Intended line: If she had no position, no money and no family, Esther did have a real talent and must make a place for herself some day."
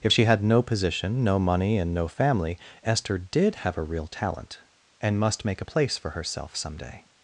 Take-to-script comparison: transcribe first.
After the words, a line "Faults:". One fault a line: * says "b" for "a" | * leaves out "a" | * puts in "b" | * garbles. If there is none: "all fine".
If she had no position, no money and no family, Esther did have a real talent and must make a place for herself some day."
Faults:
all fine